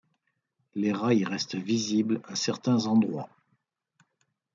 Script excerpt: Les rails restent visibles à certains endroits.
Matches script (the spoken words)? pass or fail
pass